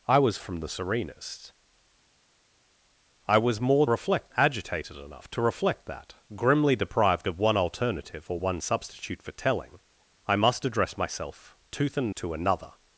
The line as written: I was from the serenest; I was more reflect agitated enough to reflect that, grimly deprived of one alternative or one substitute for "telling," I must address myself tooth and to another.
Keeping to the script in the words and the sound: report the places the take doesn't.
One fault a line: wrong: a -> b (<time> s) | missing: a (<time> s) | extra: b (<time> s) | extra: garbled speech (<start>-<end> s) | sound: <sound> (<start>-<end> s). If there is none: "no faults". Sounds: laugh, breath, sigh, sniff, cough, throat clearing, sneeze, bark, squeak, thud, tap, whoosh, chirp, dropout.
no faults